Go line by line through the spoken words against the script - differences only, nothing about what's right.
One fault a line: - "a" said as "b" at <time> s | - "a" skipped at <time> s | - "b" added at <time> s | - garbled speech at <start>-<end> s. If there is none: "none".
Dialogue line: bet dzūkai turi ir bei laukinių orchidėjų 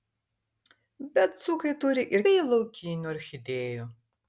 none